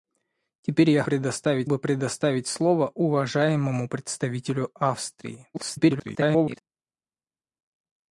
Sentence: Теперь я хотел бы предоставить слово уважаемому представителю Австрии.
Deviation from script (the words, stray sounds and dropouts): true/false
true